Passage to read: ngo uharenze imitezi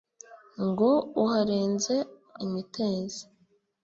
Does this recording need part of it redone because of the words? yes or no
no